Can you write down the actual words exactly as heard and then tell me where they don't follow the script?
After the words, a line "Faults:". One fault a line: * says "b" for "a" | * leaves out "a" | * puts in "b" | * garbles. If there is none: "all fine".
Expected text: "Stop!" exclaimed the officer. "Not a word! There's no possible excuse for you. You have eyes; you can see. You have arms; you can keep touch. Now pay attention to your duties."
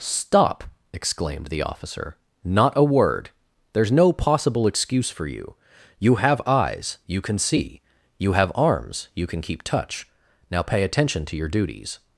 "Stop!" exclaimed the officer. "Not a word! There's no possible excuse for you. You have eyes; you can see. You have arms; you can keep touch. Now pay attention to your duties."
Faults:
all fine